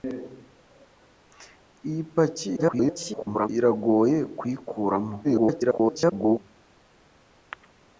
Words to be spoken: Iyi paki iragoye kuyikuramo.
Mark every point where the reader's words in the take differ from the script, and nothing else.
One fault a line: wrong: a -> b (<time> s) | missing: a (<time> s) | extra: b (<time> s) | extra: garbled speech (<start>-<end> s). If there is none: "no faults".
extra: garbled speech (2.6-3.5 s)
extra: garbled speech (5.2-6.4 s)